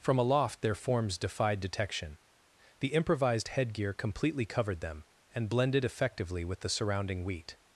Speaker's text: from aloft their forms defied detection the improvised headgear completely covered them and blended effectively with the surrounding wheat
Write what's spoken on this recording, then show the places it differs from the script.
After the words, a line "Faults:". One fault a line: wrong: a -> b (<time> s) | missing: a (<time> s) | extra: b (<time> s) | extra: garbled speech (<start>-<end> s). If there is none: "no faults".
from aloft their forms defied detection the improvised headgear completely covered them and blended effectively with the surrounding wheat
Faults:
no faults